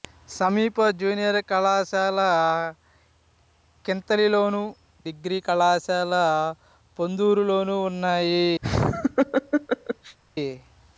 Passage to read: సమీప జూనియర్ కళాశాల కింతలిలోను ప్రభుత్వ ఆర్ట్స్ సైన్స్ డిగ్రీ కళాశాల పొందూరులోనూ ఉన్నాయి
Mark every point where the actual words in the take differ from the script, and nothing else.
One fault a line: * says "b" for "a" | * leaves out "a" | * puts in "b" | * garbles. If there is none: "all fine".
* leaves out "ప్రభుత్వ ఆర్ట్స్ సైన్స్"